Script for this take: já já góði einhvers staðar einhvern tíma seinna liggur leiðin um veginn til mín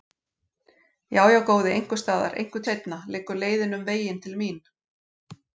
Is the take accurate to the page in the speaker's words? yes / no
no